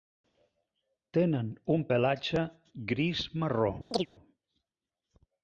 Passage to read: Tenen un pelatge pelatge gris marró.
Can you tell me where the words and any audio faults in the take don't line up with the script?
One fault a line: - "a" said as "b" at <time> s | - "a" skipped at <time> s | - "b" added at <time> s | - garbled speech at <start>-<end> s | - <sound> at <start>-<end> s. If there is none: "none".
- "pelatge" skipped at 2.4 s
- chirp at 3.9-4.1 s